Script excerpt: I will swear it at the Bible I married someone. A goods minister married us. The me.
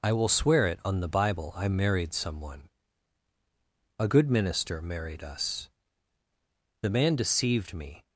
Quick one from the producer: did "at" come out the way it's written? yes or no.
no